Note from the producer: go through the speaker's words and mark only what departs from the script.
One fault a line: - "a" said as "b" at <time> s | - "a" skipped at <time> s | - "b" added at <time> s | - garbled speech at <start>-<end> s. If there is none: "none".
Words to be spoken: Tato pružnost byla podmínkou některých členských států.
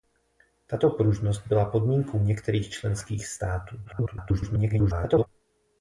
- garbled speech at 3.8-5.3 s